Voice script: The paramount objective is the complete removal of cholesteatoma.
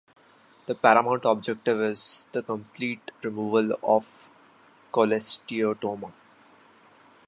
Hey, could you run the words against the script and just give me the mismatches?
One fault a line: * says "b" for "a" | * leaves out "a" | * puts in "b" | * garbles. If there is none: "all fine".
all fine